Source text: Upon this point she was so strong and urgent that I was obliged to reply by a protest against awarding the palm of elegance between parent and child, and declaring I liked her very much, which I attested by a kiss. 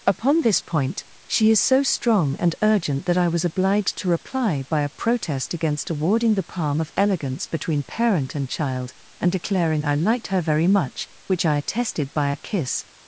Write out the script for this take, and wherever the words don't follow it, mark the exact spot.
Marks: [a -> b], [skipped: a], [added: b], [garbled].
Upon this point she [was -> is] so strong and urgent that I was obliged to reply by a protest against awarding the palm of elegance between parent and child, and declaring I liked her very much, which I attested by a kiss.